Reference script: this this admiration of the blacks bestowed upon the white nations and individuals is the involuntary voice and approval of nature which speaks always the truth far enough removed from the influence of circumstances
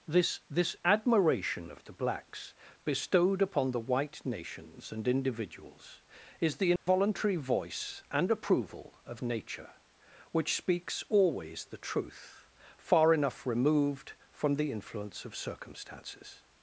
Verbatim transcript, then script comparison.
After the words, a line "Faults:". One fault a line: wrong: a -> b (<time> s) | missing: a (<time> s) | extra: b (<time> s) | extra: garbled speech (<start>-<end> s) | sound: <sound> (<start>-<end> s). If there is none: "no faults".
this this admiration of the blacks bestowed upon the white nations and individuals is the involuntary voice and approval of nature which speaks always the truth far enough removed from the influence of circumstances
Faults:
sound: dropout (6.8-6.9 s)